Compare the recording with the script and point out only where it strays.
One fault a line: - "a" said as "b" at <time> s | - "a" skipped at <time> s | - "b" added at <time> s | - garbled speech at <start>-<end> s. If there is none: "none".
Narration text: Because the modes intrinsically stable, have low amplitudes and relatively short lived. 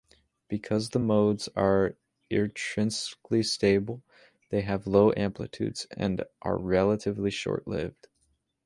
- "are" added at 1.6 s
- "they" added at 4.5 s
- "are" added at 6.4 s